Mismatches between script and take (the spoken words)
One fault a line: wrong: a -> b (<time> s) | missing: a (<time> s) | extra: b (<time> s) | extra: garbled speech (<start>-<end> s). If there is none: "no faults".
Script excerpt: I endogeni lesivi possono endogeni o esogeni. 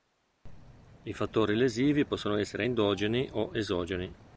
wrong: endogeni -> fattori (1.1 s)
extra: essere (2.4 s)